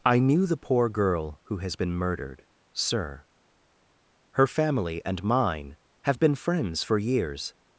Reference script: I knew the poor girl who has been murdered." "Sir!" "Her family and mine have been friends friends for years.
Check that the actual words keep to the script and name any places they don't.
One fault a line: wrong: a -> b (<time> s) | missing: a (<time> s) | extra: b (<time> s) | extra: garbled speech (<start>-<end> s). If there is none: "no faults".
missing: friends (6.8 s)